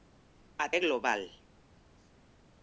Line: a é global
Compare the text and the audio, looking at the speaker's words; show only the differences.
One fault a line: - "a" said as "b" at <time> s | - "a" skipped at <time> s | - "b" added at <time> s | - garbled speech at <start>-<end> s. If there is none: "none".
none